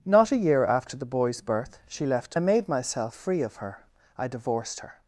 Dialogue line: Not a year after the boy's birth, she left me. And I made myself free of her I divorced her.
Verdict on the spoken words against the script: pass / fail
fail